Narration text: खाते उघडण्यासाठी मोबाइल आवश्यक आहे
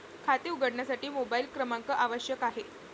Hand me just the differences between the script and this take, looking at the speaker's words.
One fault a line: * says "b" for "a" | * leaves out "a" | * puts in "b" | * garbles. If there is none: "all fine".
* puts in "क्रमांक"